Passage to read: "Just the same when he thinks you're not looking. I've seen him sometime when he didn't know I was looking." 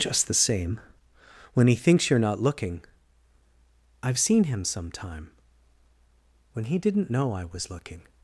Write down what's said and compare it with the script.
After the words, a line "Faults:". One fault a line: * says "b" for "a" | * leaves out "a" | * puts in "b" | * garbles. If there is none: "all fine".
"Just the same when he thinks you're not looking. I've seen him sometime when he didn't know I was looking."
Faults:
all fine